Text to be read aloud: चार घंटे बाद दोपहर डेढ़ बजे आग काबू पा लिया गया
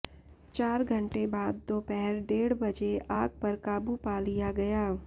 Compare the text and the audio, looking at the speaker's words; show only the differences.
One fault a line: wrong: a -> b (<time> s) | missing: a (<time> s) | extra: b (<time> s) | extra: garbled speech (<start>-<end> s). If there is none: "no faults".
extra: पर (3.4 s)